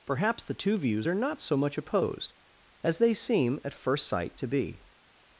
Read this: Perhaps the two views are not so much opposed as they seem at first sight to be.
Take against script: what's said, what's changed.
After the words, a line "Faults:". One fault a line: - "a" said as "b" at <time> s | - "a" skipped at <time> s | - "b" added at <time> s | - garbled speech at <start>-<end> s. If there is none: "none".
Perhaps the two views are not so much opposed as they seem at first sight to be.
Faults:
none